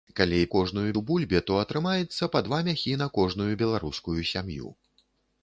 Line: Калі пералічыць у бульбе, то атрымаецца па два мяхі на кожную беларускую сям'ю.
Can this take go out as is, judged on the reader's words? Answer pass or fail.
fail